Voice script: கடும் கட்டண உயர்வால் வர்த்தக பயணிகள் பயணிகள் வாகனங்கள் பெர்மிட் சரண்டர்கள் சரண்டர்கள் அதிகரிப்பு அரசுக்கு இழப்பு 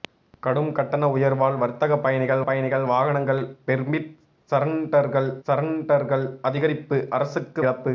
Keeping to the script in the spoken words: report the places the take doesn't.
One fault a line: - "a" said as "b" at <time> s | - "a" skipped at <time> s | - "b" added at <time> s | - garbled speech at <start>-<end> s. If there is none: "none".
none